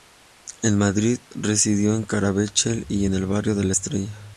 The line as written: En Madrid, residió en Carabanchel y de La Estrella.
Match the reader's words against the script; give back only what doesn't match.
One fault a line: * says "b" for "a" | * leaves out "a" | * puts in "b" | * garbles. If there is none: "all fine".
* puts in "en el Barrio"